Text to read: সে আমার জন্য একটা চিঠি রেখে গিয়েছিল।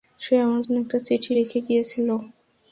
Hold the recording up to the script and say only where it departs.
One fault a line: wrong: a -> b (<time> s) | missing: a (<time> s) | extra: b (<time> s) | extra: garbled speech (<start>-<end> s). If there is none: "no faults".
no faults